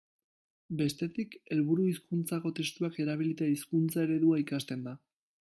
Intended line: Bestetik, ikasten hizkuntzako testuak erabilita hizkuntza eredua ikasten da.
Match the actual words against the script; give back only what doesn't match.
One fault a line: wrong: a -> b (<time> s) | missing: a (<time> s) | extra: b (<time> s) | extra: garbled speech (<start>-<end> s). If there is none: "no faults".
wrong: ikasten -> helburu (1.6 s)